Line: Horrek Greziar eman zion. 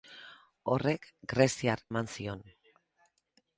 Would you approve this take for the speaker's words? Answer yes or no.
yes